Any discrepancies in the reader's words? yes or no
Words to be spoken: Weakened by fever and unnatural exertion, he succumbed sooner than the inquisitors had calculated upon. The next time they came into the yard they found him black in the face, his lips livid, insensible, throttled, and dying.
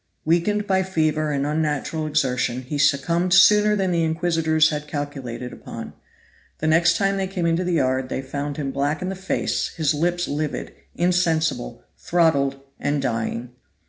no